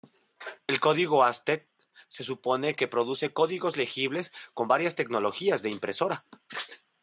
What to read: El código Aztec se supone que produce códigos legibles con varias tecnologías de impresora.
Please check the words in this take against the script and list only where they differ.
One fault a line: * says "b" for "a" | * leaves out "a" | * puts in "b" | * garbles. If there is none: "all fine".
all fine